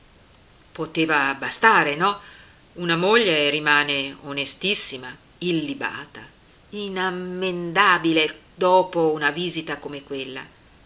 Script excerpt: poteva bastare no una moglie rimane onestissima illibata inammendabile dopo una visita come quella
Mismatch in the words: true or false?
false